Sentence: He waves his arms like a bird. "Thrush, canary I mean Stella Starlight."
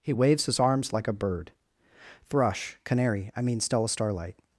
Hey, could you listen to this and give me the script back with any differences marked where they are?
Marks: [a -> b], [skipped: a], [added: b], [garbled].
He waves his arms like a bird. "Thrush, canary I mean Stella Starlight."